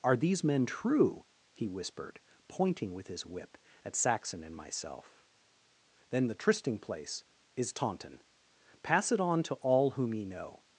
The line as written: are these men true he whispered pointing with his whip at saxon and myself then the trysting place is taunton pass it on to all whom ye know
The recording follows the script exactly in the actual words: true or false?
true